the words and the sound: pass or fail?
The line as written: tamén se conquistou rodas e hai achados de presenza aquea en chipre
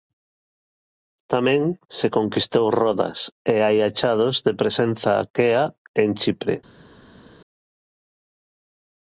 pass